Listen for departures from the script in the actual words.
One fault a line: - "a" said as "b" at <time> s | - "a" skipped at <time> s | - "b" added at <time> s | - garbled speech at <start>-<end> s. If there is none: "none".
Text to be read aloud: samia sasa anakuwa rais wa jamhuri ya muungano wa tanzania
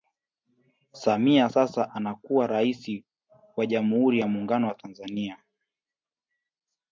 none